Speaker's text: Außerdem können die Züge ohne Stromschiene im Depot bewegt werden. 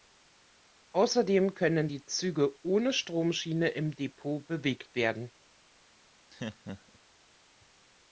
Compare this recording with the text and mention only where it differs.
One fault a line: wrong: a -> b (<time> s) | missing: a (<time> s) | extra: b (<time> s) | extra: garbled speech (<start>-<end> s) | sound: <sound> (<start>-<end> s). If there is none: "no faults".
sound: laugh (6.3-7.0 s)